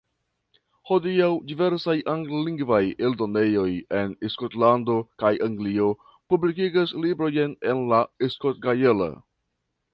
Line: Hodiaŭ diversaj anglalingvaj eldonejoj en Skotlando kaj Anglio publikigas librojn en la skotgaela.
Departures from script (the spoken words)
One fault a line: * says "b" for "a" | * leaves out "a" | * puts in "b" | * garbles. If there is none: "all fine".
all fine